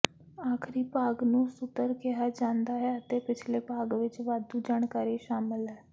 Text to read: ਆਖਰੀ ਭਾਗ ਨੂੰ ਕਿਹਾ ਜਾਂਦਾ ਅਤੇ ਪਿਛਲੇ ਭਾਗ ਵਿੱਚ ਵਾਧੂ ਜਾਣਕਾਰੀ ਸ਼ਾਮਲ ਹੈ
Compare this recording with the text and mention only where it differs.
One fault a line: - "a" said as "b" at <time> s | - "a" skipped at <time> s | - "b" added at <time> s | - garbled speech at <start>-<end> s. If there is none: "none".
- "ਸੁਤਰ" added at 1.5 s
- "ਹੈ" added at 2.8 s